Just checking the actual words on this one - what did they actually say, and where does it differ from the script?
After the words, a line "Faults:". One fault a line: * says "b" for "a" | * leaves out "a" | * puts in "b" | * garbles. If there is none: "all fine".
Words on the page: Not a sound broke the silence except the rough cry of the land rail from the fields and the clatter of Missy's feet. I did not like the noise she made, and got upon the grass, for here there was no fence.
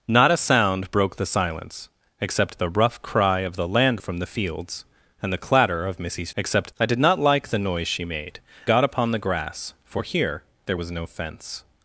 Not a sound broke the silence except the rough cry of the land from the fields and the clatter of Missy's except. I did not like the noise she made, got upon the grass, for here there was no fence.
Faults:
* leaves out "rail"
* says "except" for "feet"
* leaves out "and"